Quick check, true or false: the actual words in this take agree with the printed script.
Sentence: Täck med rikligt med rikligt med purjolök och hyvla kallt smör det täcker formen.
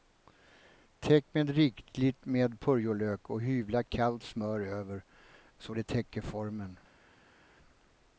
false